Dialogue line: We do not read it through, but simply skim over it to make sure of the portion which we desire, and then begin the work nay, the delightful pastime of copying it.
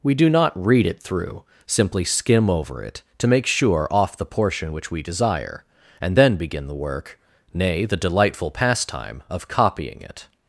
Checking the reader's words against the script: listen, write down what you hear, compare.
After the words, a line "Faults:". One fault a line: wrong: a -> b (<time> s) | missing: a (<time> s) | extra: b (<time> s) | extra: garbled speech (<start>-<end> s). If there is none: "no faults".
We do not read it through, simply skim over it to make sure off the portion which we desire, and then begin the work nay, the delightful pastime of copying it.
Faults:
missing: but (1.4 s)
wrong: of -> off (3.9 s)